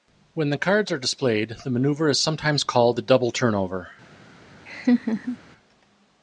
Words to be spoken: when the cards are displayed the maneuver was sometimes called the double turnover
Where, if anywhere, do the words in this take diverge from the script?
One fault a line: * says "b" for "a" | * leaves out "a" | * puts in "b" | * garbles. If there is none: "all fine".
* says "is" for "was"